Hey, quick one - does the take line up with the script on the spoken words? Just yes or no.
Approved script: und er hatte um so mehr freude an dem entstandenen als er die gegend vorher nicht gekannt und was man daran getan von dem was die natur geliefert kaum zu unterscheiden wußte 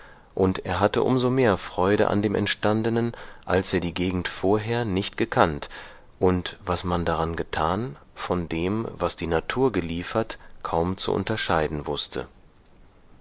yes